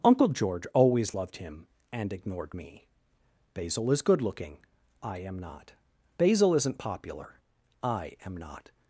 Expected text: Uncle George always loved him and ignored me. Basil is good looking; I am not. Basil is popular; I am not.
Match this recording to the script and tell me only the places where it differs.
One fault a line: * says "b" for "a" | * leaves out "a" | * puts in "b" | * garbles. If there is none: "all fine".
* says "isn't" for "is"